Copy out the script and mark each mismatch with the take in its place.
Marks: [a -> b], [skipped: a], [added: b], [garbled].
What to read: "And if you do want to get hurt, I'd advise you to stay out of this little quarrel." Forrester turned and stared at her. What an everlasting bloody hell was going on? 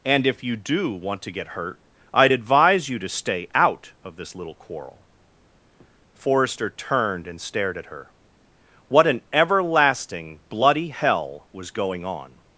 "And if you do want to get hurt, I'd advise you to stay out of this little quarrel." Forrester turned and stared at her. What an everlasting bloody hell was going on?